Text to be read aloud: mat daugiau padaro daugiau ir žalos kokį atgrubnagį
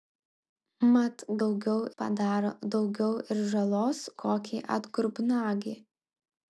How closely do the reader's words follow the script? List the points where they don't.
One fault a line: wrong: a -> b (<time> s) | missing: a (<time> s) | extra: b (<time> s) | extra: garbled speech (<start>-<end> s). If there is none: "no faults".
no faults